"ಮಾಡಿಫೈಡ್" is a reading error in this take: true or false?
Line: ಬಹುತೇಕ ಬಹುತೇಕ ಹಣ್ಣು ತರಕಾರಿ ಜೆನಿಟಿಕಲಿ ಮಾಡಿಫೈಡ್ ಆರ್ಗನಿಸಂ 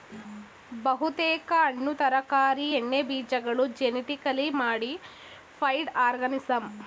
false